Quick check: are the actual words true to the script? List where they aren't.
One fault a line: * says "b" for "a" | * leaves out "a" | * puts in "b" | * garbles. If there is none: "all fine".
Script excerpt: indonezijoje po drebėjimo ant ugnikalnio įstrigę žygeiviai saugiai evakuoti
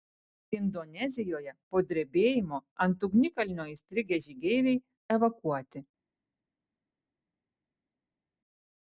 * leaves out "saugiai"